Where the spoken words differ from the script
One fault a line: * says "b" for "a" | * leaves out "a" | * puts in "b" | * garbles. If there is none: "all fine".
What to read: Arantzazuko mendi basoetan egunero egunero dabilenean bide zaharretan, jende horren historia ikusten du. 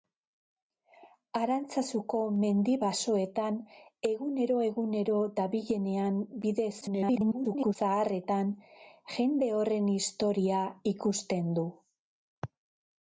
* garbles